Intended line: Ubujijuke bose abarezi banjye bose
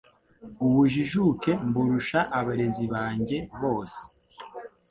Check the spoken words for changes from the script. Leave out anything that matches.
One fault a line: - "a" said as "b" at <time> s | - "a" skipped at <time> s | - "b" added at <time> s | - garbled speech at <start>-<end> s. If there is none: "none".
- "bose" said as "mburusha" at 1.7 s